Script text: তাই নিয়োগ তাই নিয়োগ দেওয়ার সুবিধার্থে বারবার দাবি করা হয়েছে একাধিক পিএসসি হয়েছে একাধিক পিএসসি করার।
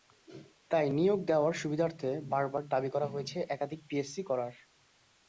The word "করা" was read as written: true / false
true